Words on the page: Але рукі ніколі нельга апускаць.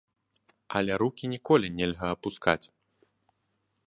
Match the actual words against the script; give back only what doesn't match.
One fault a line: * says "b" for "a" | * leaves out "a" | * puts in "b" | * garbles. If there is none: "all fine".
all fine